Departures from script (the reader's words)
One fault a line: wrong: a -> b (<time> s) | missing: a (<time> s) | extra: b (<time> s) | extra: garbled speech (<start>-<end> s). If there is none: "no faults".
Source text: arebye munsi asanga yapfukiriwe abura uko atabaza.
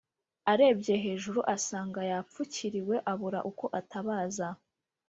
wrong: munsi -> hejuru (1.1 s)